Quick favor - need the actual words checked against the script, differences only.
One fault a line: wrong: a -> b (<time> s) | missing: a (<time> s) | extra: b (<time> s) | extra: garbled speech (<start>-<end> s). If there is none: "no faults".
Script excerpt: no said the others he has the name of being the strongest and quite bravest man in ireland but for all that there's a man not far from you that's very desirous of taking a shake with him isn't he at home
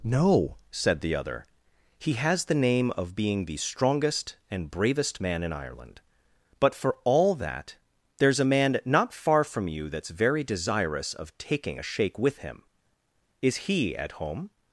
wrong: others -> other (1.1 s)
missing: quite (4.7 s)
wrong: isn't -> is (13.4 s)